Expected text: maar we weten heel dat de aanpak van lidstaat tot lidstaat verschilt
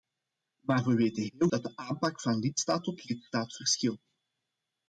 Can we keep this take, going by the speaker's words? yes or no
yes